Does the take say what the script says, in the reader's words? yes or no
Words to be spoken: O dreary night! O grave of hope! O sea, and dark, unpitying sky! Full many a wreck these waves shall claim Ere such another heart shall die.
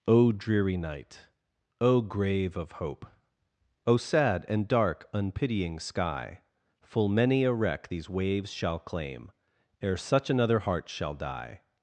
no